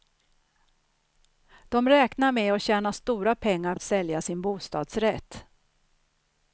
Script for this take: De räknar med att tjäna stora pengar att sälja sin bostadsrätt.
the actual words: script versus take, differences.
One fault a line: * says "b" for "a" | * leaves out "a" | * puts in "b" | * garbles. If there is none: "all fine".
all fine